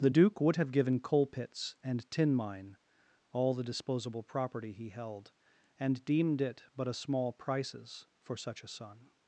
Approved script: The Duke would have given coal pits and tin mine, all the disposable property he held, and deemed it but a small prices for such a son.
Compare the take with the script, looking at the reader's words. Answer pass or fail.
pass